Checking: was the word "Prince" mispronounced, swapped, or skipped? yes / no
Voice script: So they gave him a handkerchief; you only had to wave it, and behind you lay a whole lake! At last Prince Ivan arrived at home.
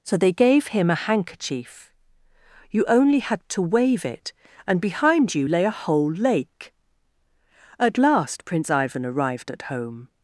no